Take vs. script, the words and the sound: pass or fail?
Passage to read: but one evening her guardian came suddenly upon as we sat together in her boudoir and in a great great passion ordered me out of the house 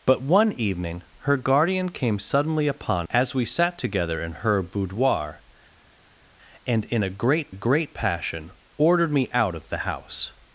pass